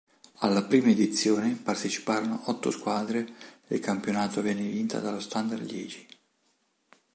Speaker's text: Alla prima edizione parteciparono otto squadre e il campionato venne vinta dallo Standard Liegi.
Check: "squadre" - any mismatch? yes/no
no